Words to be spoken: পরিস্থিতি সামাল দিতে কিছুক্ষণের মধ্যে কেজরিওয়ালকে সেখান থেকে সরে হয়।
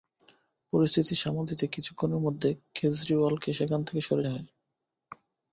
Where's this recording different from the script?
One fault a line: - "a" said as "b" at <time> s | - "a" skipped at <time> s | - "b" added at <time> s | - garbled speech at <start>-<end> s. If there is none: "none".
none